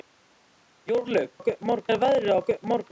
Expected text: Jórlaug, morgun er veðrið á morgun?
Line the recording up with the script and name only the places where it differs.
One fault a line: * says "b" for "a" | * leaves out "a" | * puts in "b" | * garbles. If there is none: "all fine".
all fine